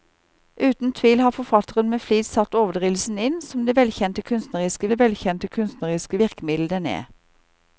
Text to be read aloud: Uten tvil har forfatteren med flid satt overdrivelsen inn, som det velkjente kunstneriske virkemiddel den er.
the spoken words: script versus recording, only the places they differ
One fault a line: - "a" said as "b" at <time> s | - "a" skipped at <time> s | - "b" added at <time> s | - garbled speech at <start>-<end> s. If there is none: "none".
- "det velkjente kunstneriske" added at 4.9 s